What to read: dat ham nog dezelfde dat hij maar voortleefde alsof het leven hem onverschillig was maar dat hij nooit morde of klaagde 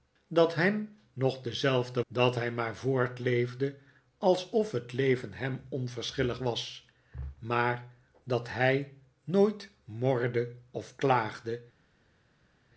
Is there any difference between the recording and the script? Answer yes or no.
no